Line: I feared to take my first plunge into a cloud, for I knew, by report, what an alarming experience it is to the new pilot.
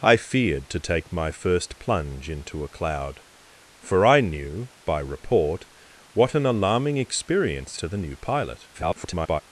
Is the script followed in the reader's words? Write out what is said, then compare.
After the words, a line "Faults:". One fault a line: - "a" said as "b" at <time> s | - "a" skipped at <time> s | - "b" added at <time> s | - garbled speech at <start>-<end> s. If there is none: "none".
I feared to take my first plunge into a cloud, for I knew, by report, what an alarming experience to the new pilot. [garbled]
Faults:
- "it is" skipped at 7.8 s
- garbled speech at 8.7-9.4 s